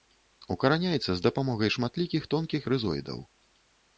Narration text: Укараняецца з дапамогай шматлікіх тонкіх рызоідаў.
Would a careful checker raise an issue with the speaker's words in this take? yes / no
no